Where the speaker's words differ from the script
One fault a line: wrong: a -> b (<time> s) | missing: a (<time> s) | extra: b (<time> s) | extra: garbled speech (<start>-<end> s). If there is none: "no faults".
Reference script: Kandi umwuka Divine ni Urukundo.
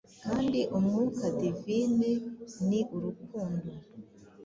no faults